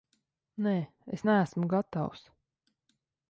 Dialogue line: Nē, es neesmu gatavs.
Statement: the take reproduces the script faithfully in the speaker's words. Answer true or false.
true